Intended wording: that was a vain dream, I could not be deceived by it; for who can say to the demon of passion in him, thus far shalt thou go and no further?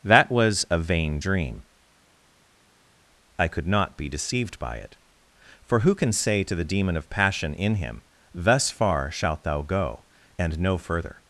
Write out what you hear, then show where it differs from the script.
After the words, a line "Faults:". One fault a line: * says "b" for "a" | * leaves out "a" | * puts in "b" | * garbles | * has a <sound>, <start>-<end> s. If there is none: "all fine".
that was a vain dream, I could not be deceived by it; for who can say to the demon of passion in him, thus far shalt thou go and no further?
Faults:
all fine